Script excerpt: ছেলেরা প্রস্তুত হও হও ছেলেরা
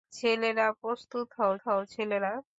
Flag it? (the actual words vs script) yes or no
no